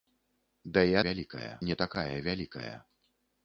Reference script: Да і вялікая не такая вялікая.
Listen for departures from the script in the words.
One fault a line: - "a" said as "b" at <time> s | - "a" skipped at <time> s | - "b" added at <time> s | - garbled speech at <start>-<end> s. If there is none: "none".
none